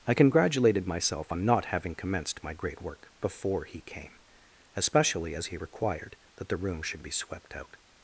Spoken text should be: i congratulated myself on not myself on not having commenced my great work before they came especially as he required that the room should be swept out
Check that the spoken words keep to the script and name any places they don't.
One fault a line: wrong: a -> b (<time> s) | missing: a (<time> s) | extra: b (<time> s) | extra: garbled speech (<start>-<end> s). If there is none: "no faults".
missing: myself on not (1.7 s)
wrong: they -> he (3.6 s)